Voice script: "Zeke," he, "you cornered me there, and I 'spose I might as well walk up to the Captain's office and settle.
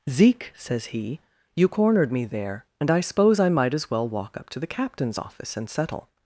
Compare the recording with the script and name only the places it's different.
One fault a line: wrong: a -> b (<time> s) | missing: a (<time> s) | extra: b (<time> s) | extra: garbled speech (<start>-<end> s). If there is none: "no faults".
extra: says (0.5 s)